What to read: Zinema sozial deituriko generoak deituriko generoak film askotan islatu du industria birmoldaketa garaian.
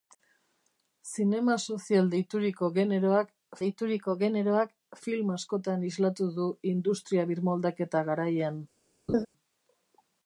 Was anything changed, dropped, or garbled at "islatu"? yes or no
no